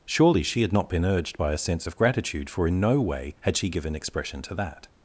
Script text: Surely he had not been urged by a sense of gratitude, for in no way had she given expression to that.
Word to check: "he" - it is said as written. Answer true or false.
false